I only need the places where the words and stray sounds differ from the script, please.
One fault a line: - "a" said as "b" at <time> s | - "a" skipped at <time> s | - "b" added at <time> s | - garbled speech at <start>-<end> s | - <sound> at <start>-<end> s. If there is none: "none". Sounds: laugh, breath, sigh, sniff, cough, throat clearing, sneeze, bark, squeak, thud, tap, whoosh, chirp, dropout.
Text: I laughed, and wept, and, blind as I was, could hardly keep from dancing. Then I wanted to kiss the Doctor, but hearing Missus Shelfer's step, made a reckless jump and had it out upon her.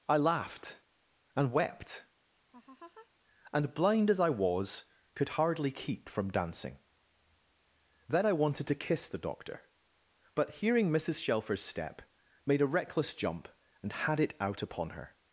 - laugh at 2.5-3.1 s